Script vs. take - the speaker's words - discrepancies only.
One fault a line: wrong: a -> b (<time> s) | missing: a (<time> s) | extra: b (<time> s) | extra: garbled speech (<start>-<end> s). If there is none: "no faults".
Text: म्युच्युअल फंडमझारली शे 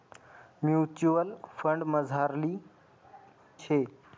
no faults